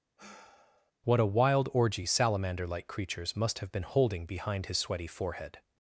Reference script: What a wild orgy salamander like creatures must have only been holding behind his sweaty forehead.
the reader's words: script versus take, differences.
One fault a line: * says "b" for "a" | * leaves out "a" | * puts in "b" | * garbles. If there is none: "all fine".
* leaves out "only"